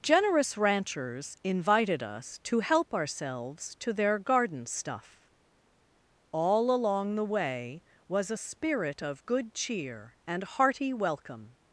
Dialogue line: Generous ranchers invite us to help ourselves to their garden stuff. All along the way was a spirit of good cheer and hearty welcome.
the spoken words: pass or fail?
fail